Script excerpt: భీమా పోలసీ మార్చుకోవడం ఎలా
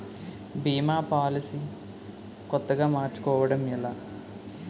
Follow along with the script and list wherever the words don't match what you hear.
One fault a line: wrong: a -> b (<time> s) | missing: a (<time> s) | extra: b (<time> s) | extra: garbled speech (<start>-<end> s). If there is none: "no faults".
extra: కొత్తగా (2.5 s)